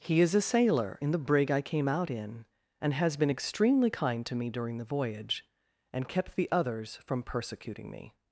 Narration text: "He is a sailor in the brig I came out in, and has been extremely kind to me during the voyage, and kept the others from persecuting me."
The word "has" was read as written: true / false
true